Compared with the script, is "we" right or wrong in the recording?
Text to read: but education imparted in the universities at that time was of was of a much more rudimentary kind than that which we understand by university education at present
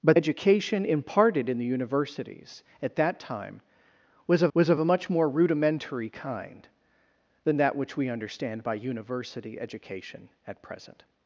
right